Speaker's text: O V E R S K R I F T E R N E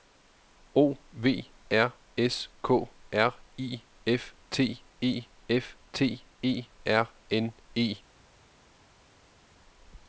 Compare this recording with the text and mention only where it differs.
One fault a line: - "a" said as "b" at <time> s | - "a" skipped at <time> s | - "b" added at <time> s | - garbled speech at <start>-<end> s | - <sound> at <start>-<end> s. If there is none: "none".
- "E" skipped at 1.5 s
- "F T E" added at 5.5 s